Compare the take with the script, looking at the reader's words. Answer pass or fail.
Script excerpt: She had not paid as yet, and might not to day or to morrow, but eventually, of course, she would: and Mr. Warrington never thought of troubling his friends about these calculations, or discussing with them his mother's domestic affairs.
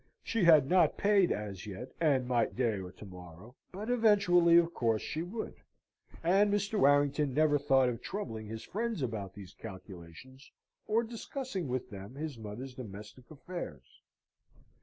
fail